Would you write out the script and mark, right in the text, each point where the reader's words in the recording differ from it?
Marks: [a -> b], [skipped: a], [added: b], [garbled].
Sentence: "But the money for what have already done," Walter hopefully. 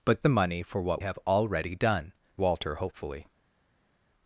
"But the money for what have already done," Walter hopefully.